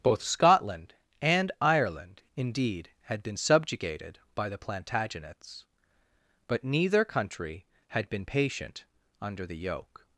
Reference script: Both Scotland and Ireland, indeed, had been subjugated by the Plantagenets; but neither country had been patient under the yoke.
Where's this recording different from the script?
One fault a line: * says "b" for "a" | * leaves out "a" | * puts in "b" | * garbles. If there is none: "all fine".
all fine